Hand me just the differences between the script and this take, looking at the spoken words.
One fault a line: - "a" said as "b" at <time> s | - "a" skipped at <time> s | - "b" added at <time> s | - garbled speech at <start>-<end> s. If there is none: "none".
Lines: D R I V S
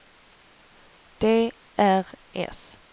- "I V" skipped at 2.0 s